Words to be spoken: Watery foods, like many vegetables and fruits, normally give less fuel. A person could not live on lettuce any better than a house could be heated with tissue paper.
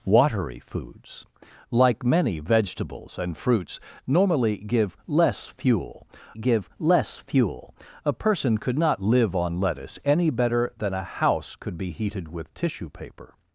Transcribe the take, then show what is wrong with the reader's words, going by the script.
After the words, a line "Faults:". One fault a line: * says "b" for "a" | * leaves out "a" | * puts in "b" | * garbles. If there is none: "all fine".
Watery foods, like many vegetables and fruits, normally give less fuel give less fuel. A person could not live on lettuce any better than a house could be heated with tissue paper.
Faults:
* puts in "give less fuel"